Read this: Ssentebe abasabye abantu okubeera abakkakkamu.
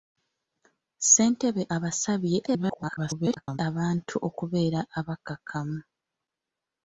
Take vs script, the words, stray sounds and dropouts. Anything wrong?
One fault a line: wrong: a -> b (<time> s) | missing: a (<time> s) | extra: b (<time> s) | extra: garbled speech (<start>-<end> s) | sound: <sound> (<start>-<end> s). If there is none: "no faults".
extra: garbled speech (2.5-3.6 s)